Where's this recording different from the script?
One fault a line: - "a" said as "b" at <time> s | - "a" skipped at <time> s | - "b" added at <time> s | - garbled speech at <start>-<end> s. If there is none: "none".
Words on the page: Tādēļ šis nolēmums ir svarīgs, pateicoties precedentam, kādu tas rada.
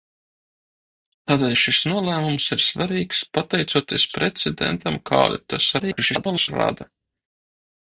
- garbled speech at 5.8-6.5 s